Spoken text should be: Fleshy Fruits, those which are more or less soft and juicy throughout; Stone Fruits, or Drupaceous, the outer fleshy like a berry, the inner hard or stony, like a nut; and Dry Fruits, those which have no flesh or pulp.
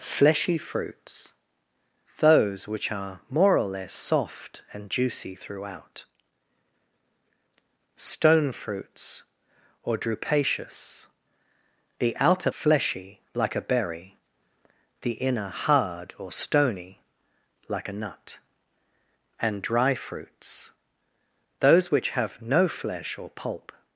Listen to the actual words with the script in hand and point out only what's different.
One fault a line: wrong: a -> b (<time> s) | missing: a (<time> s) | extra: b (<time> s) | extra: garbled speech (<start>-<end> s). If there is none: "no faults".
no faults